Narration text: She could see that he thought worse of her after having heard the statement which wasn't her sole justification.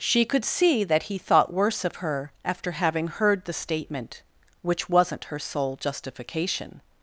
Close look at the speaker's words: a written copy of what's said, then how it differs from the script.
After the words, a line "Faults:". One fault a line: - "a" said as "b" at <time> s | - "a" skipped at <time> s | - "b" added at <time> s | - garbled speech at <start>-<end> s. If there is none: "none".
She could see that he thought worse of her after having heard the statement which wasn't her sole justification.
Faults:
none